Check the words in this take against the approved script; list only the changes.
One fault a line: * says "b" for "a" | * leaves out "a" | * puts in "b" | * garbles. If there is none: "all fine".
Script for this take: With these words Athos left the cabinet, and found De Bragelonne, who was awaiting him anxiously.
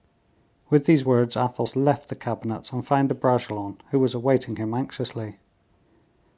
all fine